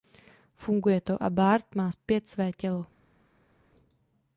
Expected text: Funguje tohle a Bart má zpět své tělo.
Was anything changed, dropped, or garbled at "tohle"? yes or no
yes